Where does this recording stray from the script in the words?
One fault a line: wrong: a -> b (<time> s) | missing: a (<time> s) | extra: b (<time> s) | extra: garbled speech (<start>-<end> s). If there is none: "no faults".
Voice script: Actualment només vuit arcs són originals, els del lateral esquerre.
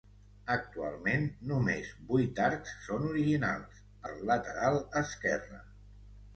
missing: els (3.9 s)